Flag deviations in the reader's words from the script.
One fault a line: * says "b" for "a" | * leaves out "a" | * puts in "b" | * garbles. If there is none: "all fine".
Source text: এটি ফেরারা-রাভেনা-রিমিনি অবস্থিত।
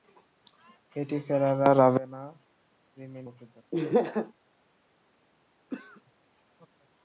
all fine